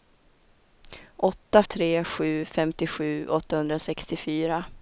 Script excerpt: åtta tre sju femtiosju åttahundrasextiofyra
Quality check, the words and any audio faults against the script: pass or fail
pass